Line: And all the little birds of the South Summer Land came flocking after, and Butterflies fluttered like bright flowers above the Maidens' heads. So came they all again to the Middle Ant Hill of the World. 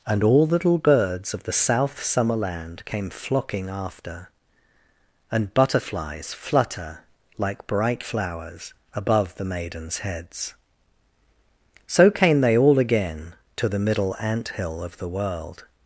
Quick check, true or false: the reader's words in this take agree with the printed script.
false